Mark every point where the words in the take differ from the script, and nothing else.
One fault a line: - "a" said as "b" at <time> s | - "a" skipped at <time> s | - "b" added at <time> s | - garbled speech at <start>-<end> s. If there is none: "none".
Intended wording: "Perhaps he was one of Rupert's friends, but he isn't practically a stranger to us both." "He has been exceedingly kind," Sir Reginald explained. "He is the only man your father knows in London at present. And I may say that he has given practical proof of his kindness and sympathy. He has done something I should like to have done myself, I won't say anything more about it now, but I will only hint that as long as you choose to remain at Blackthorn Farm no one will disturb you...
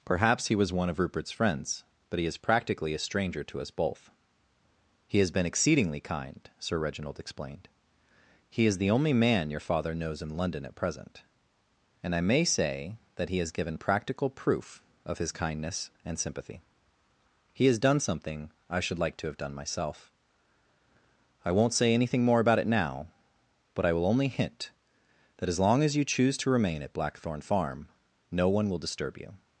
- "isn't" said as "is" at 2.2 s